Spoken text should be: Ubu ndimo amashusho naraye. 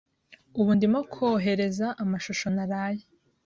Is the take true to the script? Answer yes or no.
no